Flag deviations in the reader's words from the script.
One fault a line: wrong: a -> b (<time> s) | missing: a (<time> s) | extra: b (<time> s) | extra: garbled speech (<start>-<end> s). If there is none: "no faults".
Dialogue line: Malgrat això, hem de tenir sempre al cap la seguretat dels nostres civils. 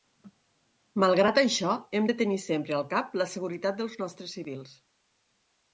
no faults